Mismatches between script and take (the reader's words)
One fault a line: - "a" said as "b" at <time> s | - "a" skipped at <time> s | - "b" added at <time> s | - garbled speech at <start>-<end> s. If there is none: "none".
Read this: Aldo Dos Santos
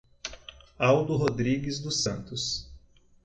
- "Rodrigues" added at 1.1 s